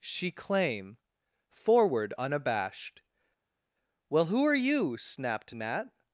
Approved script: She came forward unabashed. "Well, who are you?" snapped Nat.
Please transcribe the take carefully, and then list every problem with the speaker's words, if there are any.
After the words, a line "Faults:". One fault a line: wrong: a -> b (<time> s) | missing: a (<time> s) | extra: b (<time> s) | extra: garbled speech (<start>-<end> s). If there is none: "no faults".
She claim forward unabashed. "Well, who are you?" snapped Nat.
Faults:
wrong: came -> claim (0.3 s)